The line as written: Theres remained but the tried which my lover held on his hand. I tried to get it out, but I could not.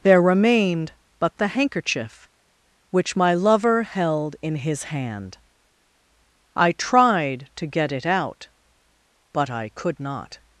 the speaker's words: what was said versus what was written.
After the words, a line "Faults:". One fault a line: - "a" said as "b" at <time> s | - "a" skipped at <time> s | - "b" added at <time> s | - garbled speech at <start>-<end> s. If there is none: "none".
There remained but the handkerchief which my lover held in his hand. I tried to get it out, but I could not.
Faults:
- "Theres" said as "There" at 0.0 s
- "tried" said as "handkerchief" at 1.5 s
- "on" said as "in" at 4.4 s